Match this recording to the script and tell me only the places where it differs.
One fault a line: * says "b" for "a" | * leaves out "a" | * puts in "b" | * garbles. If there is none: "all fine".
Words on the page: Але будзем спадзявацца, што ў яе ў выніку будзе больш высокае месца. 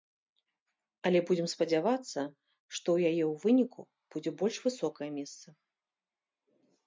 all fine